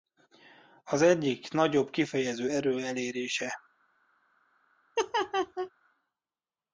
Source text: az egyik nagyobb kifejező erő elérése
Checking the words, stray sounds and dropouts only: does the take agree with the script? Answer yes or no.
no